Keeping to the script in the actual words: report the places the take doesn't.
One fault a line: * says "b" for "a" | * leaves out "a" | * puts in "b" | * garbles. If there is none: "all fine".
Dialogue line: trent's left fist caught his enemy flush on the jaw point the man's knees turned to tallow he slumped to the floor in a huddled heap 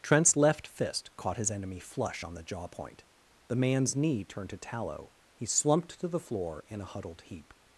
* says "knee" for "knees"